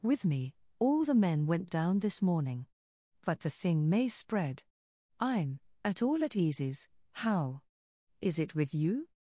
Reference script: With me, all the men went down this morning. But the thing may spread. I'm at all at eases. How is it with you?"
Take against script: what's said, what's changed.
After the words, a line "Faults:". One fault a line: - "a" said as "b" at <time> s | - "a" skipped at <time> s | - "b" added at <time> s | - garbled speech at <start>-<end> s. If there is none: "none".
With me, all the men went down this morning. But the thing may spread. I'm at all at eases. How is it with you?"
Faults:
none